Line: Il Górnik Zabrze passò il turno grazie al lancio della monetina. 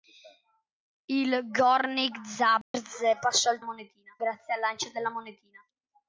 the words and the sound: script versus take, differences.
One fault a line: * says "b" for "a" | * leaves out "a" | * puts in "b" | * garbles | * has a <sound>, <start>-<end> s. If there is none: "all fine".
* has a dropout, 2.6-2.7 s
* says "monetina" for "turno"